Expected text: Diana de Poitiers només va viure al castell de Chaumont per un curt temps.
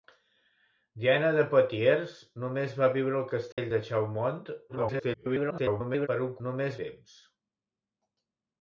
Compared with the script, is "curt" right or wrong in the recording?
wrong